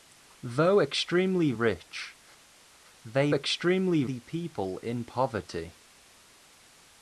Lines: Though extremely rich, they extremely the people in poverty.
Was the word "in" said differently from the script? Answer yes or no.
no